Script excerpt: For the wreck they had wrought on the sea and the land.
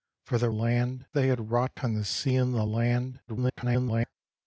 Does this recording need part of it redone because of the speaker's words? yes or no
yes